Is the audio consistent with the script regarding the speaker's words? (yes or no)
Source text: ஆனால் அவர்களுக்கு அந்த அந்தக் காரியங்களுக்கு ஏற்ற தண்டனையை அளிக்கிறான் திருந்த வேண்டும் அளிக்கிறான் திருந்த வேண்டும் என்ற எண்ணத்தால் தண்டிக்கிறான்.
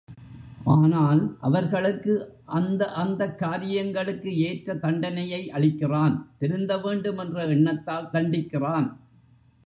no